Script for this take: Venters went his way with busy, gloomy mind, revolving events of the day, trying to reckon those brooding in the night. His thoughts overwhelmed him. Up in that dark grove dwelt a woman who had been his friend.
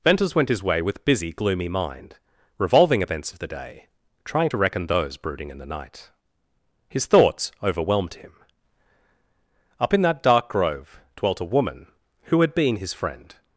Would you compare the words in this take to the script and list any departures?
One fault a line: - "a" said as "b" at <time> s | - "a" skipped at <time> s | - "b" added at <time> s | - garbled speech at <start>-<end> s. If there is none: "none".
none